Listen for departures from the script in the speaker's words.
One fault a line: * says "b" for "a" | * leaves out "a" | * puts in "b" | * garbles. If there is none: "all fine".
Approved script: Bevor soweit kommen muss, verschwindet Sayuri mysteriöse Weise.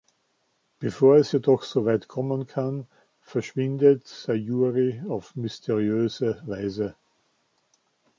* puts in "es jedoch"
* says "kann" for "muss"
* puts in "auf"